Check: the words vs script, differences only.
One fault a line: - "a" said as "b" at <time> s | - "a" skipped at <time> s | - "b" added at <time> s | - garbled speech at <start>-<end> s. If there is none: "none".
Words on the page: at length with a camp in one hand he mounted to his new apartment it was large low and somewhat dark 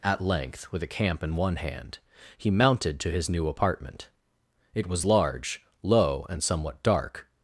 none